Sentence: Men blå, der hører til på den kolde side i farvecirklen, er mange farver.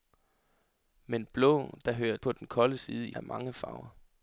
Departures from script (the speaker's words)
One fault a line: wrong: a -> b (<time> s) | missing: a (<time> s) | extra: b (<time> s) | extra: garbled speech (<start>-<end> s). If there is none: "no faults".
missing: til (2.2 s)
missing: farvecirklen (3.1 s)